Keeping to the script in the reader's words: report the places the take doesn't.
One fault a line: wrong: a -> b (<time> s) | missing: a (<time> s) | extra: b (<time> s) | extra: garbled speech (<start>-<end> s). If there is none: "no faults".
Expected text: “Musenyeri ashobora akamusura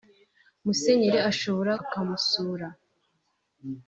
no faults